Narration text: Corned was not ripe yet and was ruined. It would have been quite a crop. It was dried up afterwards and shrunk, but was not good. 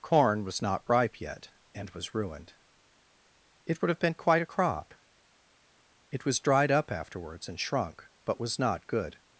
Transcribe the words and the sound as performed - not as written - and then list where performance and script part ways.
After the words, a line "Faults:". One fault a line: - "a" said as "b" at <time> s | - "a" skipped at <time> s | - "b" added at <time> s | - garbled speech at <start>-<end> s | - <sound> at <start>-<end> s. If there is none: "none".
Corn was not ripe yet and was ruined. It would have been quite a crop. It was dried up afterwards and shrunk, but was not good.
Faults:
- "Corned" said as "Corn" at 0.0 s